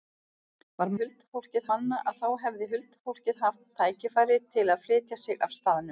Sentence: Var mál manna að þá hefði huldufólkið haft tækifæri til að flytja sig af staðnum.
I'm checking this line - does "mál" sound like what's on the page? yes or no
no